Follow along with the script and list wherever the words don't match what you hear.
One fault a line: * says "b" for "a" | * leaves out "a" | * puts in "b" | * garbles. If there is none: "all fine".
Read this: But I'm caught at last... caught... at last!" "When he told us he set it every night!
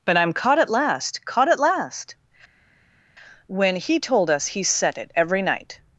all fine